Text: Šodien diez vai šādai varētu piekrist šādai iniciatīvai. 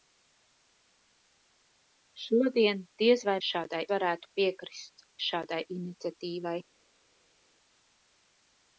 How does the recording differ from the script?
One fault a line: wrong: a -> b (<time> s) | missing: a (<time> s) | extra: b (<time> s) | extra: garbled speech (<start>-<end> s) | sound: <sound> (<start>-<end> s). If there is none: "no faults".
no faults